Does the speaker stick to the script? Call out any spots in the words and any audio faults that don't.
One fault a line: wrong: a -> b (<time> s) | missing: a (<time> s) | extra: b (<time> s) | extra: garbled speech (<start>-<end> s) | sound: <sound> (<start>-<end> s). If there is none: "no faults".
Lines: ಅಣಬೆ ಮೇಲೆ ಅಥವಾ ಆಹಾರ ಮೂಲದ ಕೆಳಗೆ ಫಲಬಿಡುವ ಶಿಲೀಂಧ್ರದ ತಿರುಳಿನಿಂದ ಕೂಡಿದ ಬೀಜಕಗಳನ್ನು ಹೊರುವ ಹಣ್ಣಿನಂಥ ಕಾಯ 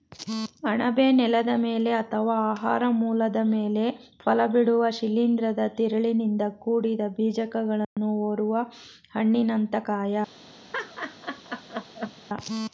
extra: ನೆಲದ (1.1 s)
wrong: ಕೆಳಗೆ -> ಮೇಲೆ (3.5 s)
sound: dropout (7.8-8.0 s)
sound: laugh (10.7-12.1 s)